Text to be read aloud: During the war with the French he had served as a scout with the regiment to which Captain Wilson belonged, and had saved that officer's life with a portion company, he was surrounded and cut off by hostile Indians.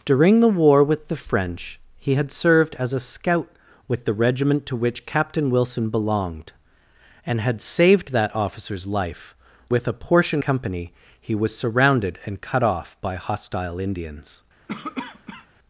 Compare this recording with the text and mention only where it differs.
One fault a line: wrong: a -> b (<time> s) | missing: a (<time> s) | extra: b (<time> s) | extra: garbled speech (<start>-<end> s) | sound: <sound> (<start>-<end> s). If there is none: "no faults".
sound: cough (14.7-15.5 s)